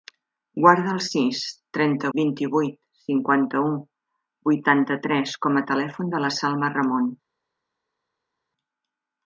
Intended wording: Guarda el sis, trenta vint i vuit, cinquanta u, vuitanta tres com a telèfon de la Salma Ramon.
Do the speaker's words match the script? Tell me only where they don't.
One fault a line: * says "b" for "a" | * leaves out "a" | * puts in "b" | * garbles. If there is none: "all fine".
all fine